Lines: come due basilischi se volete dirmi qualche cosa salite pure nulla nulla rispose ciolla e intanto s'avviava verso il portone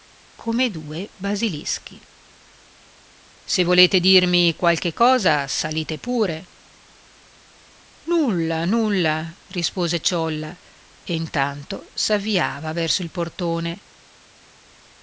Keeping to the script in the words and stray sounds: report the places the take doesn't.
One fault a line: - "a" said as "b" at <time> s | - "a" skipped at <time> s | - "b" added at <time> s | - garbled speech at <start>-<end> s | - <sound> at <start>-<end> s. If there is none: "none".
none